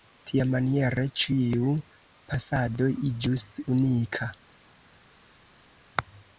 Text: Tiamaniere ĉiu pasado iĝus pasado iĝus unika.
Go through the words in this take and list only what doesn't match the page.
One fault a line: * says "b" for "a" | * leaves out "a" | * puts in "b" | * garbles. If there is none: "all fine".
* leaves out "pasado iĝus"